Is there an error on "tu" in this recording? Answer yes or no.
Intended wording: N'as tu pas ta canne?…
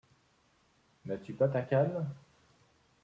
no